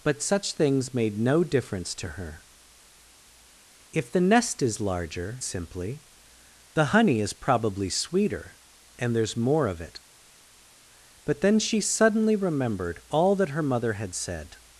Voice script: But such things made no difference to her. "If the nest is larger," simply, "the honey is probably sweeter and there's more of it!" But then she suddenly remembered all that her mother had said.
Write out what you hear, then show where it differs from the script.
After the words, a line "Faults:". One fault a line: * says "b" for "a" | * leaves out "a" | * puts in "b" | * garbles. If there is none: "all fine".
But such things made no difference to her. "If the nest is larger," simply, "the honey is probably sweeter and there's more of it!" But then she suddenly remembered all that her mother had said.
Faults:
all fine